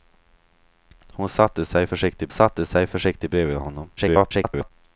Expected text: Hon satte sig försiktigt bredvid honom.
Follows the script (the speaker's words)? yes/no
no